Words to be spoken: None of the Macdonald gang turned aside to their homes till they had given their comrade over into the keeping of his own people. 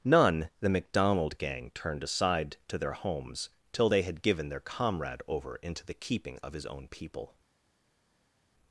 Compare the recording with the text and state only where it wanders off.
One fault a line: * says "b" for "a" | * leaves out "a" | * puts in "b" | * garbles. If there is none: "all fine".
* leaves out "of"